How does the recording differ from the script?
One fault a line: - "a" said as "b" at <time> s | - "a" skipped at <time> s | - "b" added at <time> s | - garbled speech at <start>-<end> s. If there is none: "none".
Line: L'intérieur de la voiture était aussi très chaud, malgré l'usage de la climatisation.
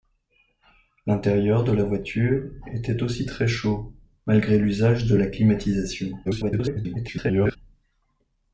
- garbled speech at 6.2-7.6 s